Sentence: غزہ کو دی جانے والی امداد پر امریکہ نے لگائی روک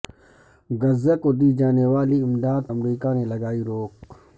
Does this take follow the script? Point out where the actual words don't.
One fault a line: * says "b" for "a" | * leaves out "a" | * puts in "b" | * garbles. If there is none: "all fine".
* leaves out "پر"